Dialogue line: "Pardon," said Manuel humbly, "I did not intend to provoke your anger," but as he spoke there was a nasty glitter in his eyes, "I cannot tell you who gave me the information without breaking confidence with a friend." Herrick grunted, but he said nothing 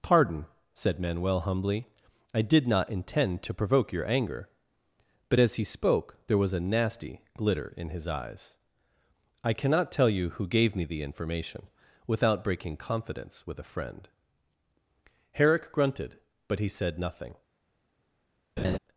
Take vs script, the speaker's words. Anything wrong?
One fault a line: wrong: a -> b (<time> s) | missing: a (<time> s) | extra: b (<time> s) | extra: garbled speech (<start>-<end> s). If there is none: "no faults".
no faults